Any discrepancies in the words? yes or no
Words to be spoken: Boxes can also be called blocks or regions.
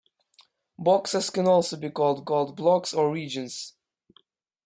yes